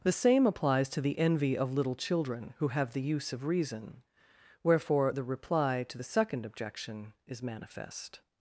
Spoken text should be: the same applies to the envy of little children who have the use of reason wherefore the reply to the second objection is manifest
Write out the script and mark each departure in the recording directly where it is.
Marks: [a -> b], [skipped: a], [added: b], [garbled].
the same applies to the envy of little children who have the use of reason wherefore the reply to the second objection is manifest